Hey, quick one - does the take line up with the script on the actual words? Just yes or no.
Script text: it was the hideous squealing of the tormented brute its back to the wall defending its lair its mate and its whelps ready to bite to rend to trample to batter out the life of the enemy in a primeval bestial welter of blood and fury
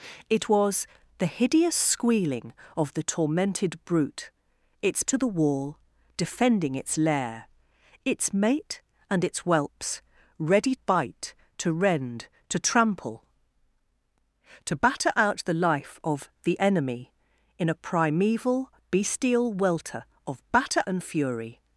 no